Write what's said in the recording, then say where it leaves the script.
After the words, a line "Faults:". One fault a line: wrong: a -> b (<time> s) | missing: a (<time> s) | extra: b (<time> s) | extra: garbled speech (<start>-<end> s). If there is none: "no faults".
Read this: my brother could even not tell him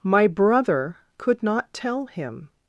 my brother could not tell him
Faults:
missing: even (1.4 s)